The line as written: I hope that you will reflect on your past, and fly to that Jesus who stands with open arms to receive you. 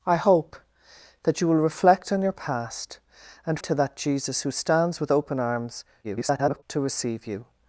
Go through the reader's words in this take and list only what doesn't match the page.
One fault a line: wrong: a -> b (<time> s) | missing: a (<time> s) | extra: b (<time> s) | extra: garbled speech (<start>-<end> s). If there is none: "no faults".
missing: fly (3.6 s)
extra: garbled speech (6.0-6.6 s)